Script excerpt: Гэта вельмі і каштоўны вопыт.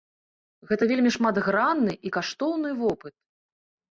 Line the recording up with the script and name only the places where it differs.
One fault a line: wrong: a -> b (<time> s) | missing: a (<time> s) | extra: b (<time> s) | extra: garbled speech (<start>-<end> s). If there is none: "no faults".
extra: шматгранны (1.2 s)